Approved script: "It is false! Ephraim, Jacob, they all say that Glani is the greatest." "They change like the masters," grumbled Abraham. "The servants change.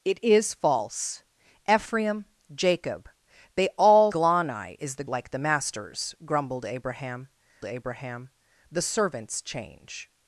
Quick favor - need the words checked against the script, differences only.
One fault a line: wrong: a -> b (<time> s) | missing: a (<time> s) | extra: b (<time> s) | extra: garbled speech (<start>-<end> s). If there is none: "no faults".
missing: say that (4.1 s)
missing: greatest They change (5.0 s)
extra: Abraham (7.6 s)